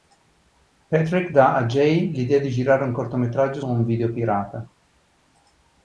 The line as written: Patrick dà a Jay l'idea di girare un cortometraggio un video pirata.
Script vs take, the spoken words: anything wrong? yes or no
no